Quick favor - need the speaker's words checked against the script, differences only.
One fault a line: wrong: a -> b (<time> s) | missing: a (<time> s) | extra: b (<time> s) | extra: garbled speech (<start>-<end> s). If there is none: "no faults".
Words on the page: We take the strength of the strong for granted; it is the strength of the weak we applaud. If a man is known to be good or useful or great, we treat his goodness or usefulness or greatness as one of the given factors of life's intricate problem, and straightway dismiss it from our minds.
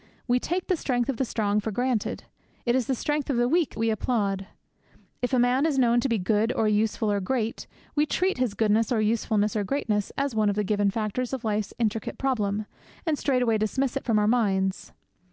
no faults